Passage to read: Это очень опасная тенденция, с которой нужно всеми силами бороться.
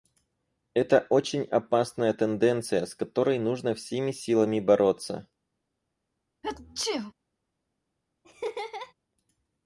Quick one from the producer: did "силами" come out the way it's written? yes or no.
yes